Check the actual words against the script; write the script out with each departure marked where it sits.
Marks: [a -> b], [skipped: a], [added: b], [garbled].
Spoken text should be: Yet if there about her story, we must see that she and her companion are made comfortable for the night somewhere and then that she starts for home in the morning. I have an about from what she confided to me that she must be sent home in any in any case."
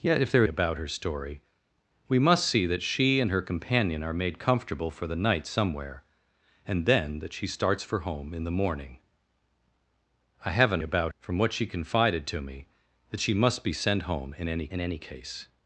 Yet if there about her story, we must see that she and her companion are made comfortable for the night somewhere and then that she starts for home in the morning. I have an about from what she confided to me that she must be sent home in any in any case."